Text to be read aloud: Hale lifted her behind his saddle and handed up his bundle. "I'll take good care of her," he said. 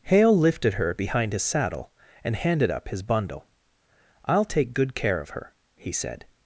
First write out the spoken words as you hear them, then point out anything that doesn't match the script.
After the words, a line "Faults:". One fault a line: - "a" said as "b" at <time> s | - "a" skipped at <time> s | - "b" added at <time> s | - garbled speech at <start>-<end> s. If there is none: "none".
Hale lifted her behind his saddle and handed up his bundle. "I'll take good care of her," he said.
Faults:
none